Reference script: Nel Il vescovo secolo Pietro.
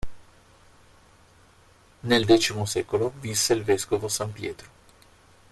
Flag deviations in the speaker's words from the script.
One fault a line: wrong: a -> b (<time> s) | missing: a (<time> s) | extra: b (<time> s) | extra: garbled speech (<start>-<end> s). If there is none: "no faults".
extra: X secolo visse (2.2 s)
wrong: secolo -> san (4.1 s)